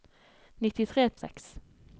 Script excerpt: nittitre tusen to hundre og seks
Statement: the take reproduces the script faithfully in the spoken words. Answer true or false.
false